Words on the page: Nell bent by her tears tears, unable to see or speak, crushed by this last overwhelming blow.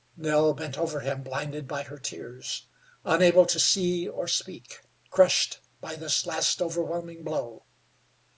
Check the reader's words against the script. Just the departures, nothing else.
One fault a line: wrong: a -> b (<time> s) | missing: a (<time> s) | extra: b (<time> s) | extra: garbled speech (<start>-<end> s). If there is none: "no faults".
extra: over him blinded (0.8 s)
missing: tears (2.6 s)